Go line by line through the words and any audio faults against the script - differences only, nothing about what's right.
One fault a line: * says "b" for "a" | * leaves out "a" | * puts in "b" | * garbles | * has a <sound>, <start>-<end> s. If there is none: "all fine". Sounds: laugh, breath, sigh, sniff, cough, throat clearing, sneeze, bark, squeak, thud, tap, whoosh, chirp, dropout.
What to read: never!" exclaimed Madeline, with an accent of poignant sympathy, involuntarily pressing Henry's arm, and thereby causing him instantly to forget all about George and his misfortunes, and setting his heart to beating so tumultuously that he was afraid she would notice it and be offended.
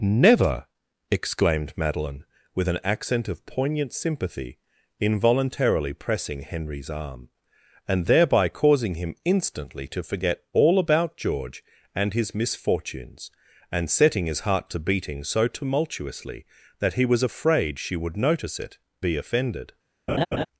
* leaves out "and"
* has a laugh, 20.1-20.5 s